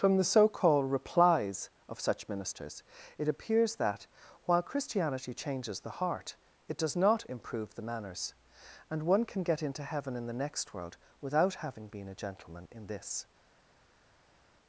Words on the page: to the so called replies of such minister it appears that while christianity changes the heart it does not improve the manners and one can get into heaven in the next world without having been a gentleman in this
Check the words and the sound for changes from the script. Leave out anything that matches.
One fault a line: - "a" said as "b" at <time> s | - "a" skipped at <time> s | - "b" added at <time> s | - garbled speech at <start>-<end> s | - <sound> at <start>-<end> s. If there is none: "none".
- "to" said as "from" at 0.0 s
- "minister" said as "ministers" at 2.3 s